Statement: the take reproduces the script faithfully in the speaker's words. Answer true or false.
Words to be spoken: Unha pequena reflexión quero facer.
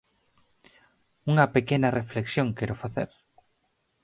true